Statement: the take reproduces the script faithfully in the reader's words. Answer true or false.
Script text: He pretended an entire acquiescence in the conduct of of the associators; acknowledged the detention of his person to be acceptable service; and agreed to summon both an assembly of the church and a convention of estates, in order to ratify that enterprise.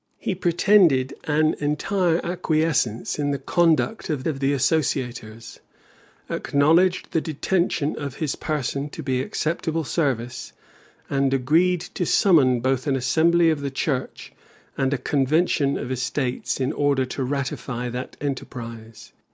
true